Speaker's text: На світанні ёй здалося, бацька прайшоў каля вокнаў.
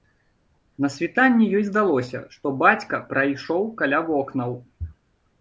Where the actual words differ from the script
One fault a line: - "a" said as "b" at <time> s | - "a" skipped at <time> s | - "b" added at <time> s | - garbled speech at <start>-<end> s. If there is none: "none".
- "што" added at 2.4 s